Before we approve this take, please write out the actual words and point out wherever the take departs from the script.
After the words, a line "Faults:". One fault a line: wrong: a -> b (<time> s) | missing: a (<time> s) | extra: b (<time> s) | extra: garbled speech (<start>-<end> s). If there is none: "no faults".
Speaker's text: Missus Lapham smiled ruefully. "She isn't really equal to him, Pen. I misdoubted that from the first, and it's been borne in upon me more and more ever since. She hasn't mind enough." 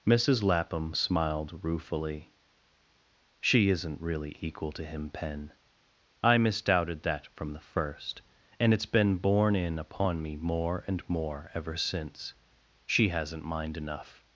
Missus Lapham smiled ruefully. "She isn't really equal to him, Pen. I misdoubted that from the first, and it's been borne in upon me more and more ever since. She hasn't mind enough."
Faults:
no faults